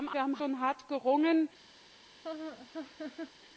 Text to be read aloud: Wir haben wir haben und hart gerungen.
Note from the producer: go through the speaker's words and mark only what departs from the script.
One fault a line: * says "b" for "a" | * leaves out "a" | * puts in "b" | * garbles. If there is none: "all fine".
all fine